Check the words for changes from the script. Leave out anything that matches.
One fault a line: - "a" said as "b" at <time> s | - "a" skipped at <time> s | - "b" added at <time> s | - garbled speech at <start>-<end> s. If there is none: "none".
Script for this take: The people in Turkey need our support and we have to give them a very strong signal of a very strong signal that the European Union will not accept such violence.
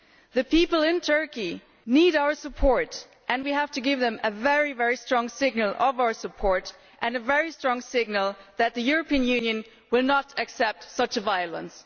- "our support and" added at 6.0 s